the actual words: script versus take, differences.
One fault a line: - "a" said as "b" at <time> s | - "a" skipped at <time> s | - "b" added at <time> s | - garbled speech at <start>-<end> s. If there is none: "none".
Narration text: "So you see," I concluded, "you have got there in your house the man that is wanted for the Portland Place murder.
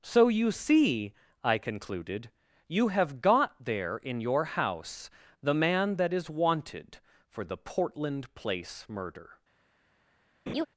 none